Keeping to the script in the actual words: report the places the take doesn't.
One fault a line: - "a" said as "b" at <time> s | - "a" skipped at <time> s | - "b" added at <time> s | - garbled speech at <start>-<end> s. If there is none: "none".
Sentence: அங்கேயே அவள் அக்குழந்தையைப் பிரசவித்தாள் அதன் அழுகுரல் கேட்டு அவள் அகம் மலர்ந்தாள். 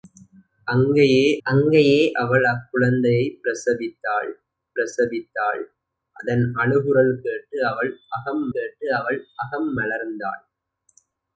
- "அங்கேயே" added at 1.5 s
- "பிரசவித்தாள்" added at 4.8 s
- "கேட்டு அவள் அகம்" added at 8.5 s